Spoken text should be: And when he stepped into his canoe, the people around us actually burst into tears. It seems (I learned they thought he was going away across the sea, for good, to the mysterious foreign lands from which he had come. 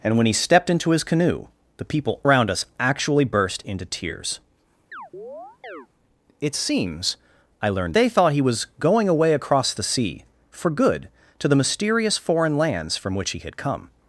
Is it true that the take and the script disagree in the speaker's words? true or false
false